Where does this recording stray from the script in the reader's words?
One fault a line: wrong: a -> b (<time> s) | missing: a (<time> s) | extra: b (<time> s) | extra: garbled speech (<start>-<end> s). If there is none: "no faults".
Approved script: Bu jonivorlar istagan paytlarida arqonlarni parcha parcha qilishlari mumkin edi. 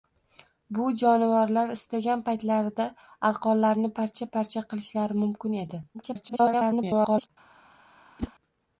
extra: garbled speech (5.9-7.3 s)